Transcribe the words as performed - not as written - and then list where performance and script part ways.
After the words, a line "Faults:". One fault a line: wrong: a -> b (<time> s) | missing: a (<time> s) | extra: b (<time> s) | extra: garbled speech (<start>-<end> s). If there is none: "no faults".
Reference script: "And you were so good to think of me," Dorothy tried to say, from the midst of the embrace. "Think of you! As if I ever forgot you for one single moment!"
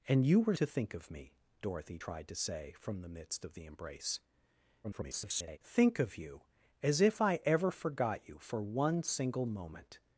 "And you were to think of me," Dorothy tried to say, from the midst of the embrace. [garbled] "Think of you! As if I ever forgot you for one single moment!"
Faults:
missing: so good (0.6 s)
extra: garbled speech (4.8-5.6 s)